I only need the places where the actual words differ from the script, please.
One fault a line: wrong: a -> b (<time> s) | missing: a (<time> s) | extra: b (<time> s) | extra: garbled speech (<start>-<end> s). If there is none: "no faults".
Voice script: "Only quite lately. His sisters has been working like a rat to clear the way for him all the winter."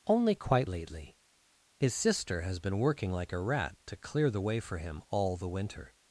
wrong: sisters -> sister (1.9 s)